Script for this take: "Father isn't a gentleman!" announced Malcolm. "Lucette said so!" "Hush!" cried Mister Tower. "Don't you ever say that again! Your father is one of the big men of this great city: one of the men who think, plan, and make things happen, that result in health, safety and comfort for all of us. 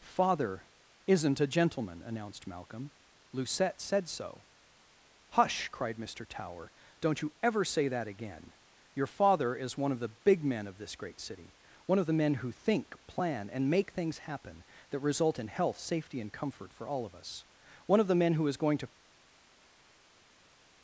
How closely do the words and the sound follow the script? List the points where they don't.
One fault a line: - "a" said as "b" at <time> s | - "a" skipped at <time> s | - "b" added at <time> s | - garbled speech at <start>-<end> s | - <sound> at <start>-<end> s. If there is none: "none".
- "One of the men who is going to" added at 17.9 s